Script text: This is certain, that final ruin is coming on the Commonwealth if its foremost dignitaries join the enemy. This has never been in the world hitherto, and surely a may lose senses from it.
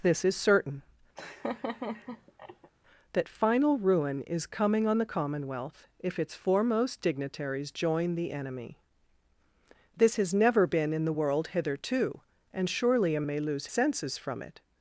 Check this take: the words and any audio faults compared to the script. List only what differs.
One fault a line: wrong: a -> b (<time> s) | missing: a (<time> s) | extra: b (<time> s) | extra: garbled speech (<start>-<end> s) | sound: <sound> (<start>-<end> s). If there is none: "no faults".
sound: laugh (1.2-2.7 s)